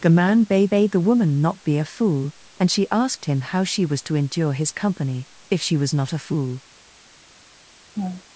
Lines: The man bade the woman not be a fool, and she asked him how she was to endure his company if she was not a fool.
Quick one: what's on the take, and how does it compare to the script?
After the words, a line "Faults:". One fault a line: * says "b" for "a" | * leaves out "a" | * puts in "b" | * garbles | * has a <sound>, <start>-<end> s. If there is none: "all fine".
The man bade bade the woman not be a fool, and she asked him how she was to endure his company if she was not a fool.
Faults:
* puts in "bade"
* has a laugh, 7.9-8.2 s